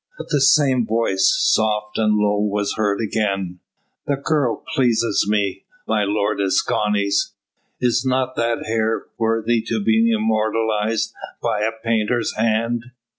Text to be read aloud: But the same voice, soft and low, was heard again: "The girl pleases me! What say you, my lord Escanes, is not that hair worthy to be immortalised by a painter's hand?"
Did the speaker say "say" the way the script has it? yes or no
no